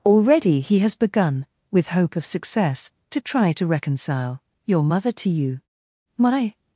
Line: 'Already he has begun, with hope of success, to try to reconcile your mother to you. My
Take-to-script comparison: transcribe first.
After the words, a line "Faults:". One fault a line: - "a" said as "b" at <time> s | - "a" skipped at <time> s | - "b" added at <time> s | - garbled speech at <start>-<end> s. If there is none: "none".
'Already he has begun, with hope of success, to try to reconcile your mother to you. My
Faults:
none